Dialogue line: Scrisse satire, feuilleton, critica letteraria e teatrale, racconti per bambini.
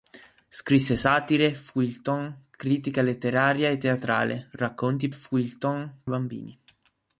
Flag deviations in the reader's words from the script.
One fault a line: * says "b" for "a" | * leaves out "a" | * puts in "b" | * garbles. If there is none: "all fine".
* says "feuilleton" for "per"